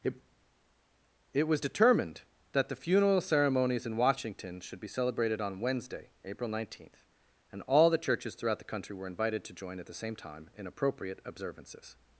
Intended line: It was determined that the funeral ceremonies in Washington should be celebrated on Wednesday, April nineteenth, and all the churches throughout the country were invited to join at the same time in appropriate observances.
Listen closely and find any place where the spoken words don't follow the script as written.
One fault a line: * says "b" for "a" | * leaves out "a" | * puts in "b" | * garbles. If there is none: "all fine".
* puts in "it"